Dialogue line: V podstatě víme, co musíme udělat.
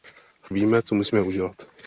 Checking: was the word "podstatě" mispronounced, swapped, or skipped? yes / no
yes